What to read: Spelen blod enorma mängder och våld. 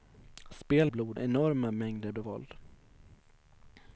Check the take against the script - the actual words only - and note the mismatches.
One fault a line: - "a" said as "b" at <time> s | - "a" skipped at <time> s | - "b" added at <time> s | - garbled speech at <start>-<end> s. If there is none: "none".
none